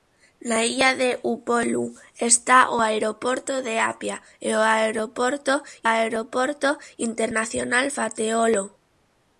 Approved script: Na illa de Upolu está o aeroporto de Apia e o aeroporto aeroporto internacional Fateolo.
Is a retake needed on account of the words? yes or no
no